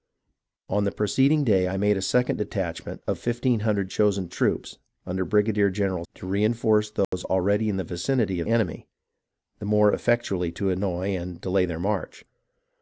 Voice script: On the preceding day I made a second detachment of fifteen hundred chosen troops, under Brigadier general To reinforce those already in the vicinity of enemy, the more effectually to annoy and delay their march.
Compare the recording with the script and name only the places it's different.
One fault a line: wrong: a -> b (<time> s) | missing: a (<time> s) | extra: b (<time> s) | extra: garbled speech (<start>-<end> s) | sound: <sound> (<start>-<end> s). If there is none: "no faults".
sound: dropout (7.0-7.1 s)